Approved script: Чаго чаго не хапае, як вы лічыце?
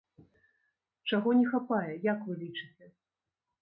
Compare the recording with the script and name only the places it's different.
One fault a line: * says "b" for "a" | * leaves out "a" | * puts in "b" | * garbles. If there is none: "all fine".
* leaves out "чаго"